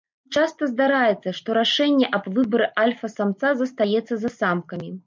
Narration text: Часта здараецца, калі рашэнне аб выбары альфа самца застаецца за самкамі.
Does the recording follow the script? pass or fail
fail